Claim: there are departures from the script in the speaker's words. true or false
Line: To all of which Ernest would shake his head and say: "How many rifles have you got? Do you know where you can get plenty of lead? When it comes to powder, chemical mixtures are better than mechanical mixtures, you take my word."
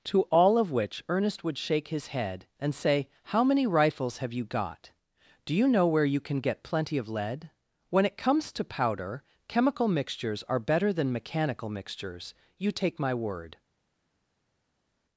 false